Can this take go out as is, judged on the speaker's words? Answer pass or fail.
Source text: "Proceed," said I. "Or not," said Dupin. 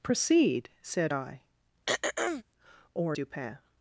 fail